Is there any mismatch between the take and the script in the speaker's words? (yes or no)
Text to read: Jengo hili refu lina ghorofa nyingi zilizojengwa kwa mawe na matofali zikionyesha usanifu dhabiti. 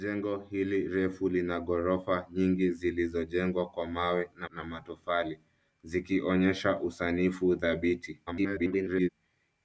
yes